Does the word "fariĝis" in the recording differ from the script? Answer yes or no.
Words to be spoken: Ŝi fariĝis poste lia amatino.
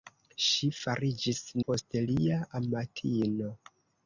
no